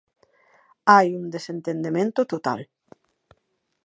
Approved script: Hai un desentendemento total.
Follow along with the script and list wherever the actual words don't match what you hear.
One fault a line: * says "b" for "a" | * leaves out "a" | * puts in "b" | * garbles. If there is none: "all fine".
all fine